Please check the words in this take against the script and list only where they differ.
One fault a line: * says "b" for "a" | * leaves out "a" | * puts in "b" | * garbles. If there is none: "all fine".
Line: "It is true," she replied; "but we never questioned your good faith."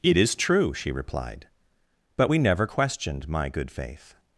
* says "my" for "your"